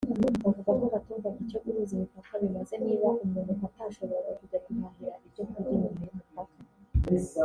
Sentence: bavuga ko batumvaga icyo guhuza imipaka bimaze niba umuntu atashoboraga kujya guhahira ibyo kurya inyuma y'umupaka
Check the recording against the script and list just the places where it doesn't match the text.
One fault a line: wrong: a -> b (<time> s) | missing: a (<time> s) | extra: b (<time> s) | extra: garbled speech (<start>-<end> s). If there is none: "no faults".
no faults